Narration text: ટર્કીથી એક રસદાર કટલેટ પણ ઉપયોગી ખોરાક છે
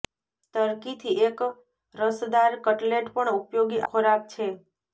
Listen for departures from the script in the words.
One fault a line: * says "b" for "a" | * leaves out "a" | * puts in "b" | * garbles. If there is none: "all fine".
all fine